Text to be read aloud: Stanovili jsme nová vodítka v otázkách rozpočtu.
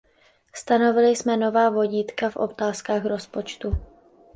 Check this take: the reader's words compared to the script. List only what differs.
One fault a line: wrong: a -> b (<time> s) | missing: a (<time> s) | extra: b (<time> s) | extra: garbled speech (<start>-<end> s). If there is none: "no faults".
no faults